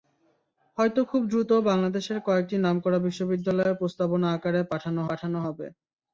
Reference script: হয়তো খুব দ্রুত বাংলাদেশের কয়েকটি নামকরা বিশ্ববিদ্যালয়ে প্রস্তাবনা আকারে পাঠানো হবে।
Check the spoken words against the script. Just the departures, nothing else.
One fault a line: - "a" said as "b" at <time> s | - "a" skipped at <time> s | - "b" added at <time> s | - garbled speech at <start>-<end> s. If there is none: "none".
- "পাঠানো" added at 5.1 s